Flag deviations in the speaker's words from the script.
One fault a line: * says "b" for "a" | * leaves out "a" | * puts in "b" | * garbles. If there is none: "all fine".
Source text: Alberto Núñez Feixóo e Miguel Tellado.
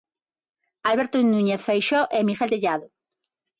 all fine